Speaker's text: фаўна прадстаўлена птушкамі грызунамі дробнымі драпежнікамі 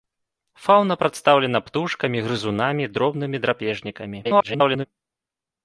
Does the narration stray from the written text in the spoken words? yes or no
yes